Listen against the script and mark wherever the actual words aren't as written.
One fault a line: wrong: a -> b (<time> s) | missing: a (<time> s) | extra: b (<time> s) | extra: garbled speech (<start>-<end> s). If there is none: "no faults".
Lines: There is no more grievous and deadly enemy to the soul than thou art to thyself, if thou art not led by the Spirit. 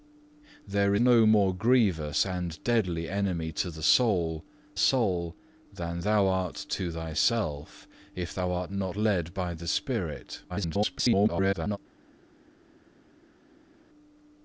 missing: is (0.9 s)
extra: soul (4.8 s)
extra: garbled speech (10.5-11.8 s)